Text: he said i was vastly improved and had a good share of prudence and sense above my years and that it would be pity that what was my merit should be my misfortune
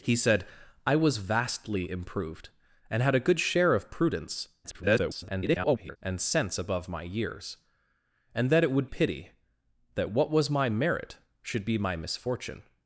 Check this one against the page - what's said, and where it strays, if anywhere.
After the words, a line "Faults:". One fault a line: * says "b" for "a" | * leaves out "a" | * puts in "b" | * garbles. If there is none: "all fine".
he said i was vastly improved and had a good share of prudence [garbled] and sense above my years and that it would pity that what was my merit should be my misfortune
Faults:
* garbles
* leaves out "be"